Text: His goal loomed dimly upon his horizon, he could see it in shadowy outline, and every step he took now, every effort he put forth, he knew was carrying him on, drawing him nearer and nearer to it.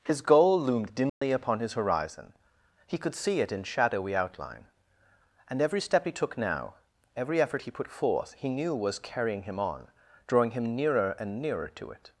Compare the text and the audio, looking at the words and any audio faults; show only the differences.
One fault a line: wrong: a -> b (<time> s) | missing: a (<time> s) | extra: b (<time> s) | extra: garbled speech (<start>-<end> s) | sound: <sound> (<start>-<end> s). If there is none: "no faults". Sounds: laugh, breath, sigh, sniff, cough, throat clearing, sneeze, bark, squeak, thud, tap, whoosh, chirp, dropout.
sound: dropout (1.1-1.2 s)